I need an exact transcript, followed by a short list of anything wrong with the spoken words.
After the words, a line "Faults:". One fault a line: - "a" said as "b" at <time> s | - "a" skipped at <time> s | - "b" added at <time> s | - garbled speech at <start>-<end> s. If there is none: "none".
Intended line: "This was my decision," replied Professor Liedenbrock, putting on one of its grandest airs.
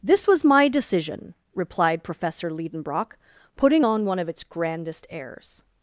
"This was my decision," replied Professor Liedenbrock, putting on one of its grandest airs.
Faults:
none